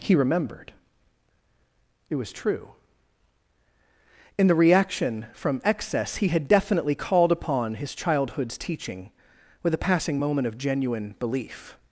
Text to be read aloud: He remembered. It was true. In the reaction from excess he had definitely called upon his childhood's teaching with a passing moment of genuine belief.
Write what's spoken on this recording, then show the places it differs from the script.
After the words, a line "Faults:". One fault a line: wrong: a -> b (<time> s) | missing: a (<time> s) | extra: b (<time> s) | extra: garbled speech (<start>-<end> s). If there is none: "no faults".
He remembered. It was true. In the reaction from excess he had definitely called upon his childhood's teaching with a passing moment of genuine belief.
Faults:
no faults